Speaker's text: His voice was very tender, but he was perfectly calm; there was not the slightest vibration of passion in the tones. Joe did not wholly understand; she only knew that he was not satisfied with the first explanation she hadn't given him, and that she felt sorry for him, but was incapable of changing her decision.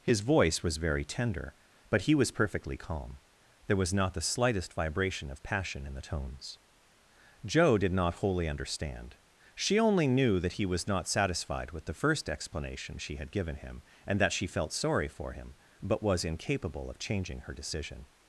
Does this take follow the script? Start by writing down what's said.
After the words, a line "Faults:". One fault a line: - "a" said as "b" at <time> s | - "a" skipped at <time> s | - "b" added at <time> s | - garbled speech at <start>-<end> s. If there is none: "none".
His voice was very tender, but he was perfectly calm; there was not the slightest vibration of passion in the tones. Joe did not wholly understand; she only knew that he was not satisfied with the first explanation she had given him, and that she felt sorry for him, but was incapable of changing her decision.
Faults:
- "hadn't" said as "had" at 13.2 s